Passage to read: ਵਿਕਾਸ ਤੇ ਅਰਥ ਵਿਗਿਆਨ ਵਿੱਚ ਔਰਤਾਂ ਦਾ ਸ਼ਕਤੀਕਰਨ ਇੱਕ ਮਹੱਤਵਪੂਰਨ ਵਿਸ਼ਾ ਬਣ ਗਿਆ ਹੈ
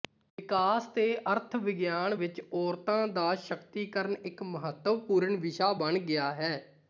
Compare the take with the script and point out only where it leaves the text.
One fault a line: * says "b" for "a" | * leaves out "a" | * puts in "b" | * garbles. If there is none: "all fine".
all fine